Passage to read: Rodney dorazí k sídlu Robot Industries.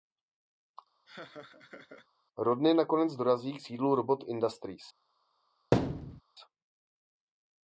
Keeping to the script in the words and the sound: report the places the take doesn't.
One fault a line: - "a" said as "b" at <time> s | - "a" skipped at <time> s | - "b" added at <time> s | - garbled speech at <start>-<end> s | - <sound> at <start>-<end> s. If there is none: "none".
- laugh at 1.1-2.1 s
- "nakonec" added at 2.7 s
- thud at 5.7-6.2 s